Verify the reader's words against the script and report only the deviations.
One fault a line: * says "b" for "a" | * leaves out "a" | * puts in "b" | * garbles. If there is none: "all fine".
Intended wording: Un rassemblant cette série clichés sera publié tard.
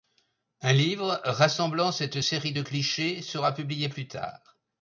* puts in "livre"
* puts in "de"
* puts in "plus"